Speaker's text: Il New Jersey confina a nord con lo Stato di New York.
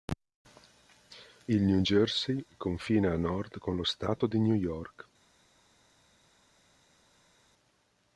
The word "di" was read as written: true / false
true